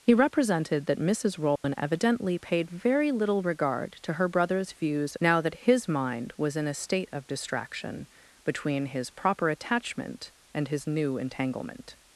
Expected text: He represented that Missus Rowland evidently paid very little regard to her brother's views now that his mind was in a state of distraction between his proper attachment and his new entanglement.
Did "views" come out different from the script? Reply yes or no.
no